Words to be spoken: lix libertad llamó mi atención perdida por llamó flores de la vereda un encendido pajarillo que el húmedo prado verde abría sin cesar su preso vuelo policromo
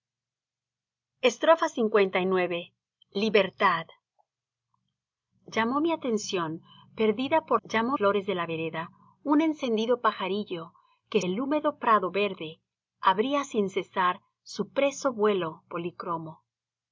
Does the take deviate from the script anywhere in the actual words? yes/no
no